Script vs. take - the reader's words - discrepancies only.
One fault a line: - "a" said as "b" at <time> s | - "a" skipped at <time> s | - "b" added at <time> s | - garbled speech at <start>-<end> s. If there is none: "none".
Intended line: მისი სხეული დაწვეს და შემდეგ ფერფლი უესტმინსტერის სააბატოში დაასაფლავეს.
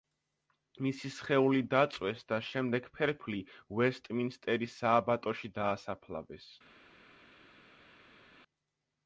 none